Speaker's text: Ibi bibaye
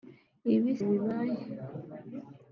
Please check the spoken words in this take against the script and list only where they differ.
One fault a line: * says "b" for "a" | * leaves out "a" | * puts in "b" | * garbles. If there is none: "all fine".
all fine